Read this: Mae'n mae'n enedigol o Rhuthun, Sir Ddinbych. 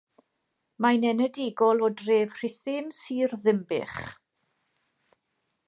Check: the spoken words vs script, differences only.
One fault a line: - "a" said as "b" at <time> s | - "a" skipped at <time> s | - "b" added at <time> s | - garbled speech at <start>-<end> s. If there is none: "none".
- "mae'n" skipped at 1.0 s
- "dref" added at 2.0 s